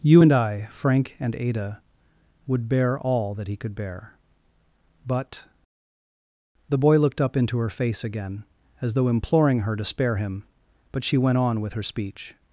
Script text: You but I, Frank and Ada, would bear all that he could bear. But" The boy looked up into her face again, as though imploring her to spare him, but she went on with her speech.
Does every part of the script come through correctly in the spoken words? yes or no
no